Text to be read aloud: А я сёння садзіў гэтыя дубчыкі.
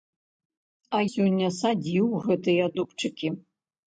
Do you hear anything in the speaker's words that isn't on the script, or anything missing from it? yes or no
yes